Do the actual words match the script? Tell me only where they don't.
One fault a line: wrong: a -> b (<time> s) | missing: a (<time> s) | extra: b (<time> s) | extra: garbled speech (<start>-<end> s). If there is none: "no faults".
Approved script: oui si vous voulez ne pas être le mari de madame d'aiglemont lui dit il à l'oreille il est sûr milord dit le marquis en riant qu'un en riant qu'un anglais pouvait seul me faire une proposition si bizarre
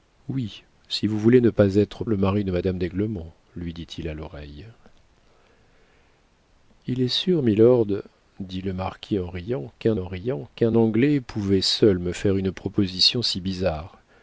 no faults